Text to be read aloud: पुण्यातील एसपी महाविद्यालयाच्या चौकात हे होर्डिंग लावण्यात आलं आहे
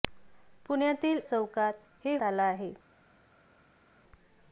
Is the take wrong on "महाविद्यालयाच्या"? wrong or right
wrong